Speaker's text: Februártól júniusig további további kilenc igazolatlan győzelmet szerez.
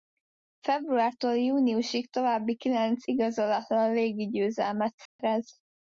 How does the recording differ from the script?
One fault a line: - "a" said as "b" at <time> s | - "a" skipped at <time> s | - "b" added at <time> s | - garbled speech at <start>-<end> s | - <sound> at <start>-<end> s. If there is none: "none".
- "további" skipped at 2.6 s
- "légi" added at 3.9 s
- dropout at 5.1-5.2 s